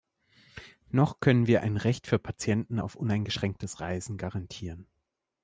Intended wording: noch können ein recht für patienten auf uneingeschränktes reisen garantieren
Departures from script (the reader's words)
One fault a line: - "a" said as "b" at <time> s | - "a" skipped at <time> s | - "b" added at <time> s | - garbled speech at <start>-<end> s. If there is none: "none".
- "wir" added at 1.4 s